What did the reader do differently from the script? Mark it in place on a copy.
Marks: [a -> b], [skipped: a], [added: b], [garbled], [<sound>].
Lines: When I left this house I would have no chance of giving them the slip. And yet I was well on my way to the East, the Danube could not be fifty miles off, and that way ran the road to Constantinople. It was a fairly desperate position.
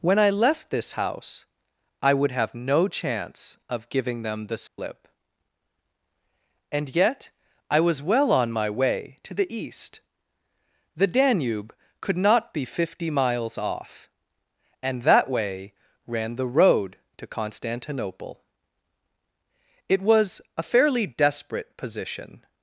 When I left this house I would have no chance of giving them the slip. [dropout] And yet I was well on my way to the East, the Danube could not be fifty miles off, and that way ran the road to Constantinople. It was a fairly desperate position.